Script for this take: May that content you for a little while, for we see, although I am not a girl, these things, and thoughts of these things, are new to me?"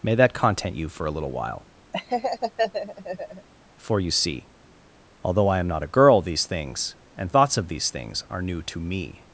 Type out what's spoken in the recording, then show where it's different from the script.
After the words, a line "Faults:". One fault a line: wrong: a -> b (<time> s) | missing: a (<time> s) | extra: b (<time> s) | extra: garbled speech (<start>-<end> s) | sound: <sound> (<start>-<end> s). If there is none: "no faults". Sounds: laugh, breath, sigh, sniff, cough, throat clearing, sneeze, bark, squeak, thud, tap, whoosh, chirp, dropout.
May that content you for a little while, for you see, although I am not a girl, these things, and thoughts of these things, are new to me?"
Faults:
sound: laugh (1.9-3.5 s)
wrong: we -> you (4.0 s)